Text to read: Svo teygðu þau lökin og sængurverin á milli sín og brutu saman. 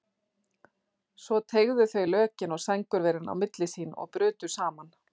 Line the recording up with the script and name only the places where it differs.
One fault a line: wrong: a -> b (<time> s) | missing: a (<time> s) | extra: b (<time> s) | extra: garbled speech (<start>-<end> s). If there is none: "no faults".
no faults